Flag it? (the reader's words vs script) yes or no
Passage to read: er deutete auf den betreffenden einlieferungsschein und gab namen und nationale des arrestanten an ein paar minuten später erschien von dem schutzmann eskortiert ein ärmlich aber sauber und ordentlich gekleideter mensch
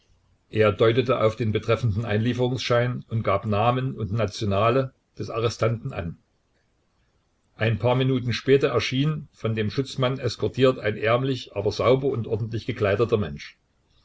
no